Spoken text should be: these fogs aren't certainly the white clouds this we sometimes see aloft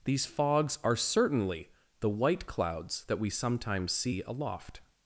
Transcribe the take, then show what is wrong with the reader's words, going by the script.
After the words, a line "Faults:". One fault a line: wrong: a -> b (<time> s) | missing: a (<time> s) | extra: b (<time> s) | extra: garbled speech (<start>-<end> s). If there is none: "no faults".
these fogs are certainly the white clouds that we sometimes see aloft
Faults:
wrong: aren't -> are (0.8 s)
wrong: this -> that (3.0 s)